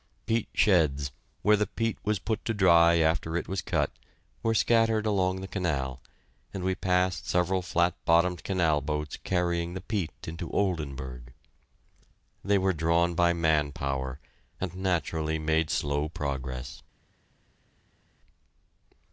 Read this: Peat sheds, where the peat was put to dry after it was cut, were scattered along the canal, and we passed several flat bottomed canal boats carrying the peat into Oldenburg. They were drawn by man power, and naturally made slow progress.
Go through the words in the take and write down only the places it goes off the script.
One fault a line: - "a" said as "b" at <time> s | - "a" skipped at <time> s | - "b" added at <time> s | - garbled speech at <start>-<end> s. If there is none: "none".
none